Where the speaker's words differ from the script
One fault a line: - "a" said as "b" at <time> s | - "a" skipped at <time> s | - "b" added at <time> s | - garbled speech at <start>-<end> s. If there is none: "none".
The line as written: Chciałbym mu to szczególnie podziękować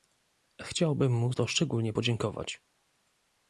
none